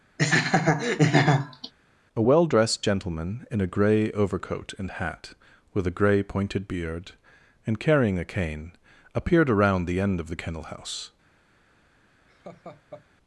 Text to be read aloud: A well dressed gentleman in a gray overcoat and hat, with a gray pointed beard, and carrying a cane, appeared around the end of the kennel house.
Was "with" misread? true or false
false